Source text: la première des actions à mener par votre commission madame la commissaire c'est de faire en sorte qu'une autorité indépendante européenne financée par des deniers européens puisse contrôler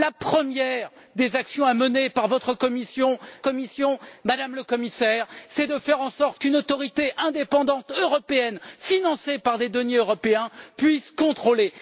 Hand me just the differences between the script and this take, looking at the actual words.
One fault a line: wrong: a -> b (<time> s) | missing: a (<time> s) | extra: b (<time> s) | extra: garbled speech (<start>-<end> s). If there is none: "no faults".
extra: commission (3.4 s)